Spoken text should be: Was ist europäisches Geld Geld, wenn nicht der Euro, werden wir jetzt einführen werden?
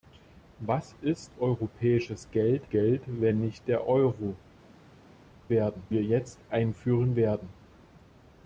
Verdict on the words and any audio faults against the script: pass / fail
pass